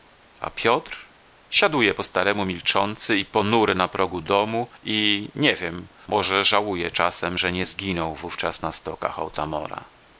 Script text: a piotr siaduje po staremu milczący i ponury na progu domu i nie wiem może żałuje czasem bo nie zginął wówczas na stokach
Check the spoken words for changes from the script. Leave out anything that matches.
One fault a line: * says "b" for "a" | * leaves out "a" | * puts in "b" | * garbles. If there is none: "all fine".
* says "że" for "bo"